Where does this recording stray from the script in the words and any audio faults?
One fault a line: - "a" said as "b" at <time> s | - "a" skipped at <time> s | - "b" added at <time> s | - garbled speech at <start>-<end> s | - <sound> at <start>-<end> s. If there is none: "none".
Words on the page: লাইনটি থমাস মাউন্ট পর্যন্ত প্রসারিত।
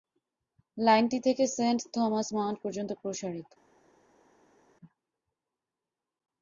- "থেকে সেন্ট" added at 1.2 s